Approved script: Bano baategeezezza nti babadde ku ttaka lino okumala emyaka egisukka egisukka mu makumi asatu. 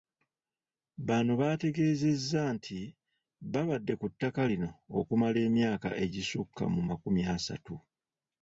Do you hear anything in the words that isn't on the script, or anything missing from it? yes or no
yes